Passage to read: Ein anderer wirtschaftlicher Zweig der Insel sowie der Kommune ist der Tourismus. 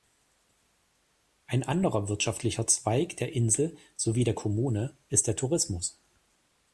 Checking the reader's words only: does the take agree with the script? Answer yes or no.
yes